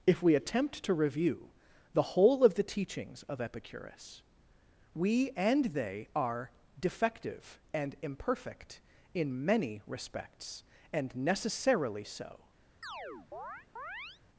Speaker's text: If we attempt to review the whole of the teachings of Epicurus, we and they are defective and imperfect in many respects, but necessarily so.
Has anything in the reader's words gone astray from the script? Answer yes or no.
yes